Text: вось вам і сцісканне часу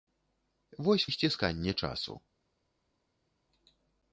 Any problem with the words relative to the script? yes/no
yes